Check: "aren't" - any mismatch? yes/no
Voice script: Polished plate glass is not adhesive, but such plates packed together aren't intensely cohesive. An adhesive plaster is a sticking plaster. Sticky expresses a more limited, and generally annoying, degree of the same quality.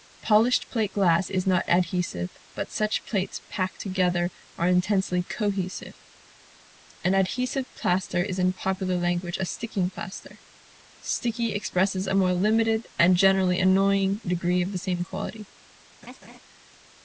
yes